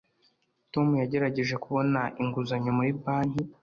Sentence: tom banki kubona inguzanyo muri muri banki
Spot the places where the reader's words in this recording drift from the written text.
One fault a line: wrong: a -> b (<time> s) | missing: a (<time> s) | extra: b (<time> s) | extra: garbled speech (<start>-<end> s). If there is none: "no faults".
wrong: banki -> yagerageje (1.0 s)
missing: muri (2.9 s)